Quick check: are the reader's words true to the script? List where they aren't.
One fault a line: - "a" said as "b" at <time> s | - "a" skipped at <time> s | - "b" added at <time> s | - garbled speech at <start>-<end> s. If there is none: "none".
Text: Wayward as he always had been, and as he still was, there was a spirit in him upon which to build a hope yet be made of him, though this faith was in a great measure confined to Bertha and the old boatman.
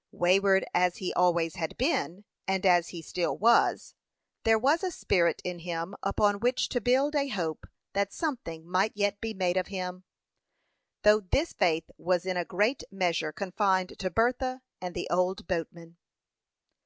- "that something might" added at 7.9 s